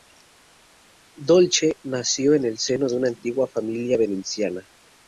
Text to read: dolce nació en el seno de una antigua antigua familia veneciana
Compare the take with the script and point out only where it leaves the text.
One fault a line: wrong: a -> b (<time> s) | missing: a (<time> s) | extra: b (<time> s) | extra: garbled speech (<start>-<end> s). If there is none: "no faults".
missing: antigua (3.5 s)